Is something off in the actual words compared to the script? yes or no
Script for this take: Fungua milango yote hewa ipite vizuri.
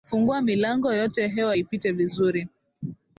no